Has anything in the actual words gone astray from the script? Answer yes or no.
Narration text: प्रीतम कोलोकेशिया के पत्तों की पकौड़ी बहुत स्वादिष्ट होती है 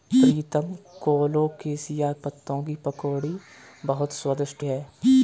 yes